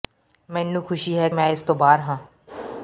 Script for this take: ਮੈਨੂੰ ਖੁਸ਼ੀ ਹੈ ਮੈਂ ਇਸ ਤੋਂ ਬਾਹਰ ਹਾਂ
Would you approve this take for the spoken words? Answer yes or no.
yes